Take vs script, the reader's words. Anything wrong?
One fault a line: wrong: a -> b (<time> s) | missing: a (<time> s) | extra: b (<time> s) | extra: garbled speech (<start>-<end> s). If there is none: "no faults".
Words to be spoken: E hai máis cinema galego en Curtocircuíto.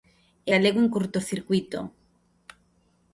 missing: hai máis cinema (0.5 s)